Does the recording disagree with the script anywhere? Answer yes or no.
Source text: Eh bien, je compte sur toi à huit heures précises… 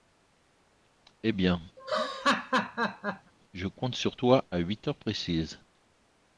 no